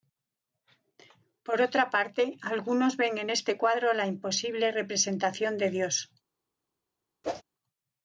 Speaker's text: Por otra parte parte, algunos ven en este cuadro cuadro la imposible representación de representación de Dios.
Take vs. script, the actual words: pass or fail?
fail